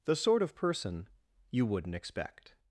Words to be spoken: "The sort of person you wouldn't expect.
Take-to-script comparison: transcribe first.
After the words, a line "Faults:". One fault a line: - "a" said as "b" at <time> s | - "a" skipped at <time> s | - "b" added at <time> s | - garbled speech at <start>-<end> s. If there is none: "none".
"The sort of person you wouldn't expect.
Faults:
none